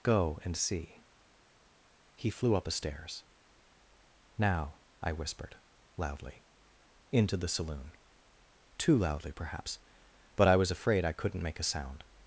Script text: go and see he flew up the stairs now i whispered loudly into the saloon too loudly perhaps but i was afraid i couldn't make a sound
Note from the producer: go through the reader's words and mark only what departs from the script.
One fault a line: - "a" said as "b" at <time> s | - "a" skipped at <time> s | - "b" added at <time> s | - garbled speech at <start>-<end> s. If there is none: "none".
- "the" said as "a" at 2.7 s